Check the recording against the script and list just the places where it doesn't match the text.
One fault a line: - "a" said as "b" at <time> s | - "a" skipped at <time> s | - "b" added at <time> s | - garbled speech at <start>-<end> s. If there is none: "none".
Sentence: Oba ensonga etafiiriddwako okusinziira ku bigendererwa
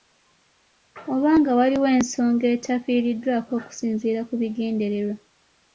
- "nga waliwo" added at 1.4 s